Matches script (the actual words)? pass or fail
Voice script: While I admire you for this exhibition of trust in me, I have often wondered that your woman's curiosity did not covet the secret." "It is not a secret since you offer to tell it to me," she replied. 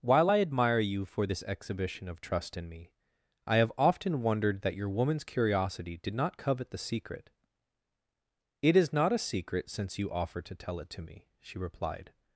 pass